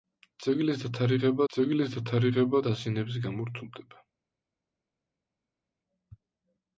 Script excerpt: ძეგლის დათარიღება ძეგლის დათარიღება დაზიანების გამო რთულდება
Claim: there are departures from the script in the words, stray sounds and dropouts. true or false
false